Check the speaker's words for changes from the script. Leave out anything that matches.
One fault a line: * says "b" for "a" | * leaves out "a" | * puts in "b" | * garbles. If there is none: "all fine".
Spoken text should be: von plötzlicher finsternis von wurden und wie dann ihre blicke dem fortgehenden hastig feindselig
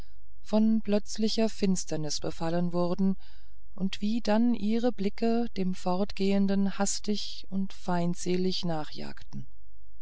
* says "befallen" for "von"
* puts in "und"